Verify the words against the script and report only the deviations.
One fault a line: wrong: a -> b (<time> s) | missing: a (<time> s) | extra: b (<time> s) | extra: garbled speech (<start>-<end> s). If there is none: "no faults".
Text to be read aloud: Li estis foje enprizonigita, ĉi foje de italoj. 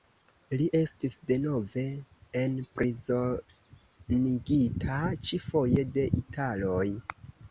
wrong: foje -> denove (1.3 s)